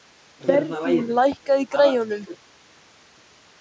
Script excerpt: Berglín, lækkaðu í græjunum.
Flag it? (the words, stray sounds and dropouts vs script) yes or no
no